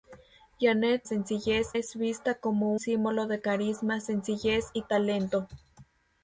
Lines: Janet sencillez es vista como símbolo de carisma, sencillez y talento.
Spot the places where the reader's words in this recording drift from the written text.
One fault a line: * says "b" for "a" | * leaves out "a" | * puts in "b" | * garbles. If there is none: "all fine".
all fine